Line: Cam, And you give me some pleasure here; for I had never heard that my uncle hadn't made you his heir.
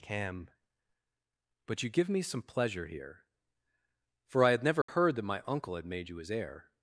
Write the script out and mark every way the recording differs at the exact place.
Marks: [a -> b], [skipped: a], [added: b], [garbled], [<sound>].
Cam, [And -> But] you give me some pleasure here; for I had never [dropout] heard that my uncle [hadn't -> had] made you his heir.